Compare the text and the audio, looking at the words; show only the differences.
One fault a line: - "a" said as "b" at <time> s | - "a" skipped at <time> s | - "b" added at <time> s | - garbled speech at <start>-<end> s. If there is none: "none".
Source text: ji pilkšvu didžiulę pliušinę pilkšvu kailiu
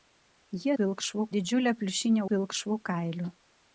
none